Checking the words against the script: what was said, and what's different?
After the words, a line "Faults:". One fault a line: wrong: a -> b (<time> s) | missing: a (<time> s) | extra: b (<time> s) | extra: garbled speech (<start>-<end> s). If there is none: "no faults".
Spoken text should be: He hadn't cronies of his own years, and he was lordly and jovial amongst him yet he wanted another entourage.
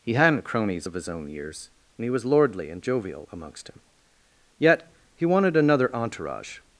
He hadn't cronies of his own years, and he was lordly and jovial amongst him yet he wanted another entourage.
Faults:
no faults